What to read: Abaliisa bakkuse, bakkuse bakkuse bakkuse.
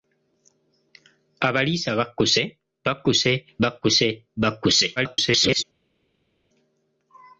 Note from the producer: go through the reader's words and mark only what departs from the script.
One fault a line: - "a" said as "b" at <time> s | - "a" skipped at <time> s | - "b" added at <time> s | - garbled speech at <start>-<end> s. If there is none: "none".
- garbled speech at 5.0-5.6 s